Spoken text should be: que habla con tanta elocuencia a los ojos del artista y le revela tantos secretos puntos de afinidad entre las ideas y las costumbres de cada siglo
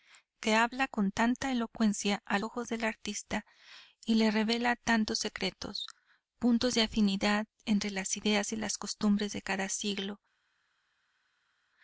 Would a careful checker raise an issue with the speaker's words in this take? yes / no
yes